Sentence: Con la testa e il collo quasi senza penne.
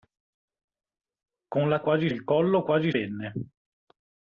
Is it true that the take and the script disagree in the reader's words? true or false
true